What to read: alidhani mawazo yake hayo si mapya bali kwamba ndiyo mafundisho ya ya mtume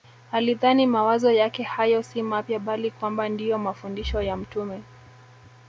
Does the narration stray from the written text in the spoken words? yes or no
yes